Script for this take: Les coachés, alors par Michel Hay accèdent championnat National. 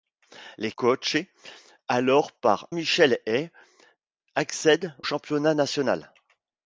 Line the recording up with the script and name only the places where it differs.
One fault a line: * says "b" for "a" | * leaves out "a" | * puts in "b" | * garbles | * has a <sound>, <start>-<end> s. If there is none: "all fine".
all fine